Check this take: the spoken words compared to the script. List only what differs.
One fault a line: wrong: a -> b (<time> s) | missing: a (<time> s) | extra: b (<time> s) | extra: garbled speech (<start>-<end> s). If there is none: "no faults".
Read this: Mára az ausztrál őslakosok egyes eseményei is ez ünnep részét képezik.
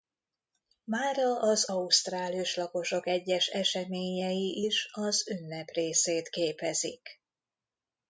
wrong: ez -> az (4.9 s)